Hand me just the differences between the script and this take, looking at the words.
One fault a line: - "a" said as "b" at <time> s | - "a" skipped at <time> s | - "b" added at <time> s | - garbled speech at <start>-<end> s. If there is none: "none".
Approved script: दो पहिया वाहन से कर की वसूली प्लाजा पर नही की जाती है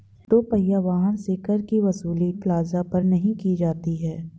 none